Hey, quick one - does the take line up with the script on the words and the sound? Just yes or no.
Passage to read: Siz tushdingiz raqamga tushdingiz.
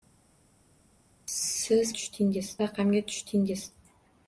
yes